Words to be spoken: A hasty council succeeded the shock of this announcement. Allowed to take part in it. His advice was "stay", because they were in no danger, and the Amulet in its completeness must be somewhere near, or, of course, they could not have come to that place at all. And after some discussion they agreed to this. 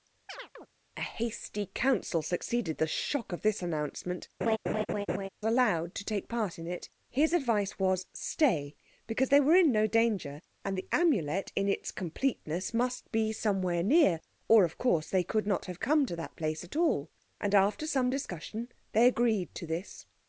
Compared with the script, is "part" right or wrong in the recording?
right